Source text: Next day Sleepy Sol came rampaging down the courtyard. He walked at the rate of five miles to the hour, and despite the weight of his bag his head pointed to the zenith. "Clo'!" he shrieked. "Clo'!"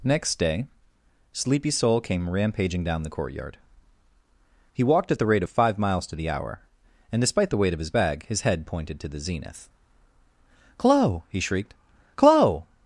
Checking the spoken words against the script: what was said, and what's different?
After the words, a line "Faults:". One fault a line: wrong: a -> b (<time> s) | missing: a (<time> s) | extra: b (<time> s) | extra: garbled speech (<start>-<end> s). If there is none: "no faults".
Next day Sleepy Sol came rampaging down the courtyard. He walked at the rate of five miles to the hour, and despite the weight of his bag his head pointed to the zenith. "Clo'!" he shrieked. "Clo'!"
Faults:
no faults